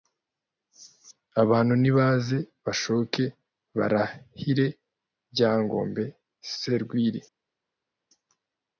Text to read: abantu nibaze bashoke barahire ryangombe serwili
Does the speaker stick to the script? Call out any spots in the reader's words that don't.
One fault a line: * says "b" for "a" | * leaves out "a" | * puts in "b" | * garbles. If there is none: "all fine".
all fine